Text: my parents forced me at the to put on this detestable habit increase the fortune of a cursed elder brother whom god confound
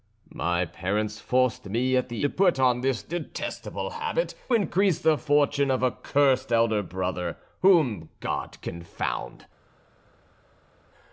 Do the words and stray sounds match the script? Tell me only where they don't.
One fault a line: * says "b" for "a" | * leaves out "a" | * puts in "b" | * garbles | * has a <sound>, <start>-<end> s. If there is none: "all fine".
all fine